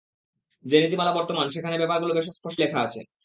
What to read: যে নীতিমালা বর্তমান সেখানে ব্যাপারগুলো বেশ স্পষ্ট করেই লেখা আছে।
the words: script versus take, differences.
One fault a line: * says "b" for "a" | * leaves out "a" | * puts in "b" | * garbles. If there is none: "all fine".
* leaves out "করেই"